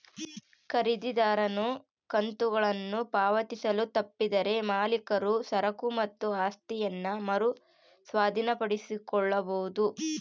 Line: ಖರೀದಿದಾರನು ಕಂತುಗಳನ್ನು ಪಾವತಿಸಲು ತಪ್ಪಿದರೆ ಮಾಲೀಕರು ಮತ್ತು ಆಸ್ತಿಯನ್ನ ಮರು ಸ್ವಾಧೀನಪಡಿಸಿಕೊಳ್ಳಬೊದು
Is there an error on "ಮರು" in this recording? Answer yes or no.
no